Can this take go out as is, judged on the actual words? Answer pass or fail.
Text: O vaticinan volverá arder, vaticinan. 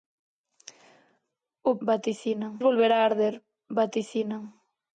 pass